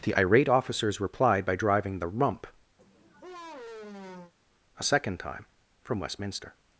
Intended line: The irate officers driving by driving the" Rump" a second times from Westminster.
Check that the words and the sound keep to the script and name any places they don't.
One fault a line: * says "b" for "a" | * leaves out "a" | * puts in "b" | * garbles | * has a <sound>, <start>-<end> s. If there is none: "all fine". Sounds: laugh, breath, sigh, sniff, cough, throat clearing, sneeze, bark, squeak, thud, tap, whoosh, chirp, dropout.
* says "replied" for "driving"
* has a sigh, 2.8-4.3 s
* says "time" for "times"